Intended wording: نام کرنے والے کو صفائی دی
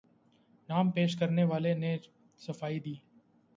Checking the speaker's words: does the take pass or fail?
fail